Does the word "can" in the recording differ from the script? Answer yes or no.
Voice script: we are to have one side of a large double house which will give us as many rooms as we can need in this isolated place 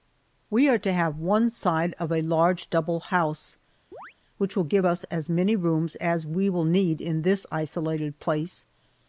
yes